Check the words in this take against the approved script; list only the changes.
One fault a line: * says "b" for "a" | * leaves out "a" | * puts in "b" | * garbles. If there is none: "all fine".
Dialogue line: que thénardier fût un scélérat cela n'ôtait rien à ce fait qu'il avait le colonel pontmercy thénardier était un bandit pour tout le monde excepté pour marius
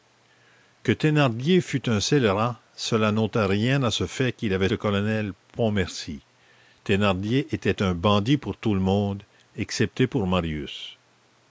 all fine